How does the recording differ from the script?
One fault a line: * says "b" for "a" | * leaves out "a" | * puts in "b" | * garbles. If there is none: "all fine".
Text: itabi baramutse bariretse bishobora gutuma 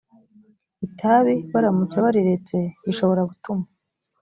all fine